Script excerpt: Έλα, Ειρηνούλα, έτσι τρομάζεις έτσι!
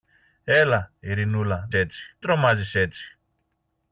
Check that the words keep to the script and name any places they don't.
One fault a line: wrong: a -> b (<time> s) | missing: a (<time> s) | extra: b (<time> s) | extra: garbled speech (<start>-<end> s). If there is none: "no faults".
no faults